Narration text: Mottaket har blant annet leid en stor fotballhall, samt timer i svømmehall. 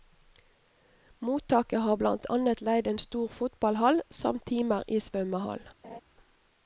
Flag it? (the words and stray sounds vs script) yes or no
yes